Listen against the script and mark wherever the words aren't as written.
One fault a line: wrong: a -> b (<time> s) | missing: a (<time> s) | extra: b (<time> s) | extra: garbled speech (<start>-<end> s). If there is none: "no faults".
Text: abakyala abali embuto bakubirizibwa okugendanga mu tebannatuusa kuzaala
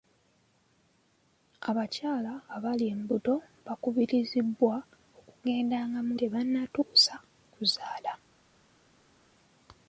no faults